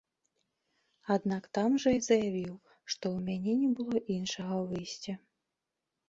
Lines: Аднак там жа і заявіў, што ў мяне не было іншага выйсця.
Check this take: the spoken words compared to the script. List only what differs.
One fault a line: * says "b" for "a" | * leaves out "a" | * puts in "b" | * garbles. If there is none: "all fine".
all fine